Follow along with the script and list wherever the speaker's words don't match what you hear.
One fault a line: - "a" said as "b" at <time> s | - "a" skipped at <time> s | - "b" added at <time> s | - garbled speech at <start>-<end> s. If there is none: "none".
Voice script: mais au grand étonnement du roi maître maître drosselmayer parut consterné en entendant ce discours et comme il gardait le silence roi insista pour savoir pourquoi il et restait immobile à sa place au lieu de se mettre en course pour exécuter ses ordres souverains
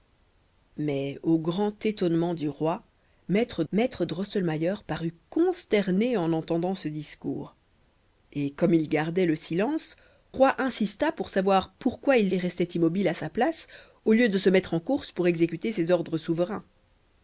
none